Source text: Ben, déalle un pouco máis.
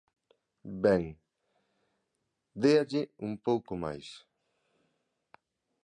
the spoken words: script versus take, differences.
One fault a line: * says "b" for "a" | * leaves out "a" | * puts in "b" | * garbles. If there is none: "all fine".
all fine